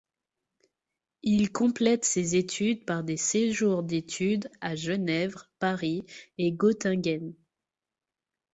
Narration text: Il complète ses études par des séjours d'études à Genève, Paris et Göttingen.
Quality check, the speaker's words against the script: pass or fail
pass